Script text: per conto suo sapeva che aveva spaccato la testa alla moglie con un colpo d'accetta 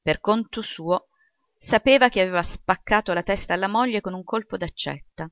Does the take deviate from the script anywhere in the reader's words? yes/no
no